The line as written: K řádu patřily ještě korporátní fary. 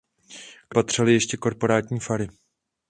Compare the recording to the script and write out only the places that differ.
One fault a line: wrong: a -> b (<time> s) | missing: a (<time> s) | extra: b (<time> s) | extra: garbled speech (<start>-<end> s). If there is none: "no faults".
missing: řádu (0.8 s)